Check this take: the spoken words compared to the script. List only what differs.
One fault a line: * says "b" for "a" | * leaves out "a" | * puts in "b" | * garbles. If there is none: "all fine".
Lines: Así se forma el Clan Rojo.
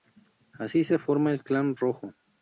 all fine